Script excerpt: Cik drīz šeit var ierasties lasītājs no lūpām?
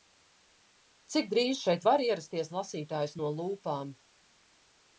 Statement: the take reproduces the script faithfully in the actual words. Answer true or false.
true